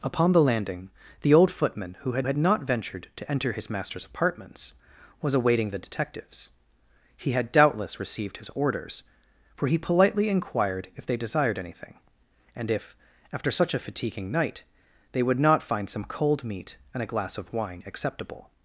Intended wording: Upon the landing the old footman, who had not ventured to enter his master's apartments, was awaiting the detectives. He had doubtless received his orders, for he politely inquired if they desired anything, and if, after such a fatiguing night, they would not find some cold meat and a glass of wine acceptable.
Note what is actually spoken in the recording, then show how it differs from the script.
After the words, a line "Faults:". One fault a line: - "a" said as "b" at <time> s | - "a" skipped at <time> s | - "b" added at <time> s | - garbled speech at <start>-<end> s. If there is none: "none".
Upon the landing the old footman, who had had not ventured to enter his master's apartments, was awaiting the detectives. He had doubtless received his orders, for he politely inquired if they desired anything, and if, after such a fatiguing night, they would not find some cold meat and a glass of wine acceptable.
Faults:
- "had" added at 2.2 s